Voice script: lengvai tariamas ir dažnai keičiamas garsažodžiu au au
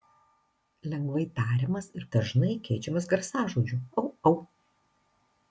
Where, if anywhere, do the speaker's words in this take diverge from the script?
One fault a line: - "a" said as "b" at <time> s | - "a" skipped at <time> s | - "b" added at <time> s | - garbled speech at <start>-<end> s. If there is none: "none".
none